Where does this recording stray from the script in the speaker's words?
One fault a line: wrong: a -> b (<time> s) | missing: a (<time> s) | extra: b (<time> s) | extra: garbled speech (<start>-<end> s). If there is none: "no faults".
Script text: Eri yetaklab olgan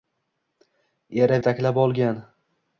no faults